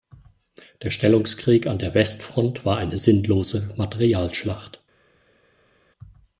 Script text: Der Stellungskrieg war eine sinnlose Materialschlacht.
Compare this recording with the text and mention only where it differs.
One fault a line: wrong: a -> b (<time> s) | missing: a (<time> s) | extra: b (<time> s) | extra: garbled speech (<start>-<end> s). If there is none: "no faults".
extra: an der Westfront (1.7 s)